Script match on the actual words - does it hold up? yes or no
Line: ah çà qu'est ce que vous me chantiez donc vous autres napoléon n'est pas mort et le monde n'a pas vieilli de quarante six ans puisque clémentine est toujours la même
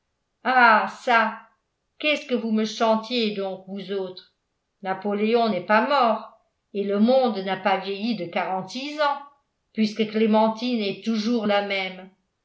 yes